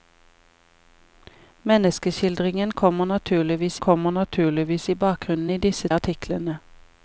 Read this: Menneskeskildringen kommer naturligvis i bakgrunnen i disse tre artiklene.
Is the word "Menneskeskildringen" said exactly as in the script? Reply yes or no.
yes